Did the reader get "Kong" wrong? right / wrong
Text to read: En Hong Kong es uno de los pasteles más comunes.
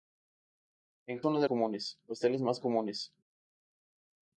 wrong